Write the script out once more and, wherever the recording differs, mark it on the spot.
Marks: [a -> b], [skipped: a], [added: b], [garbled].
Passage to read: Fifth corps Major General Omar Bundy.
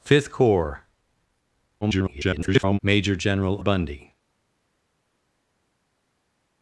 Fifth corps [garbled] Major General [skipped: Omar] Bundy.